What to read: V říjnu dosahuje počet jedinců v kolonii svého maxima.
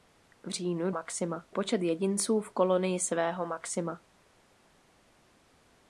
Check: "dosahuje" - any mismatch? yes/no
yes